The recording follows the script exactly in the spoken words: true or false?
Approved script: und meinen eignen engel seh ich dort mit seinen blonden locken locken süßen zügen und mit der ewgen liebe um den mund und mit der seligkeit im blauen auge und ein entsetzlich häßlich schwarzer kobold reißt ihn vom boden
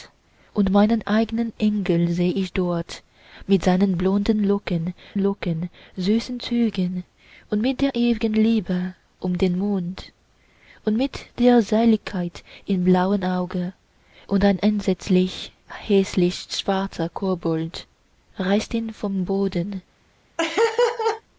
true